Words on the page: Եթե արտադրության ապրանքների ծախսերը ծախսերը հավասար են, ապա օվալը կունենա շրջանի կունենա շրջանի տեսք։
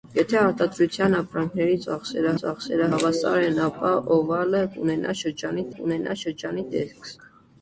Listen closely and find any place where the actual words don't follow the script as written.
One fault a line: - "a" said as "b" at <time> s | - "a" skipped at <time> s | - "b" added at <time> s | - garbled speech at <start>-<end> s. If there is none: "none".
none